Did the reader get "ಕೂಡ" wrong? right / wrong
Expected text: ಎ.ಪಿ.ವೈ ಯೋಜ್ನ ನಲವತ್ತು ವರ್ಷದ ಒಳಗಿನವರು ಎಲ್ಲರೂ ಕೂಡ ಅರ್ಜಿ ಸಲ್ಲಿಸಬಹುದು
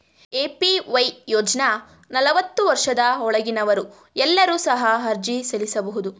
wrong